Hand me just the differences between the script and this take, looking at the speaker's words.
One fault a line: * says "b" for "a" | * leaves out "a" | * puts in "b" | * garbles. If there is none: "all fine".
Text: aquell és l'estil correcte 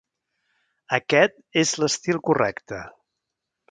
* says "aquest" for "aquell"